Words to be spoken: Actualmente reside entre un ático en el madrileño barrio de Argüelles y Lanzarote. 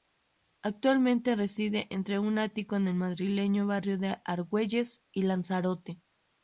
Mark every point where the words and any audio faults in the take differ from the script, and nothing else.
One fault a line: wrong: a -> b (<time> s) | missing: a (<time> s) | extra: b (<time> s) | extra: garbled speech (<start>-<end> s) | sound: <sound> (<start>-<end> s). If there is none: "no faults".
no faults